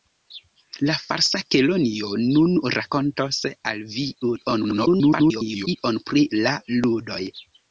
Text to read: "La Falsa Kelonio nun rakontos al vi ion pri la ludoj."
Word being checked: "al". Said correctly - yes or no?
yes